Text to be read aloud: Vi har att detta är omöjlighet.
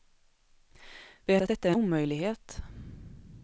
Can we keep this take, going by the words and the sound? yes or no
yes